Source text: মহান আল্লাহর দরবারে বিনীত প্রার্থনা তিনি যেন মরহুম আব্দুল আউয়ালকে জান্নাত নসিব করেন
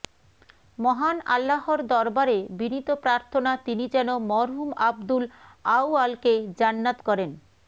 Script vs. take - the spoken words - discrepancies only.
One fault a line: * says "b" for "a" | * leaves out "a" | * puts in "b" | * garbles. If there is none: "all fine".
* leaves out "নসিব"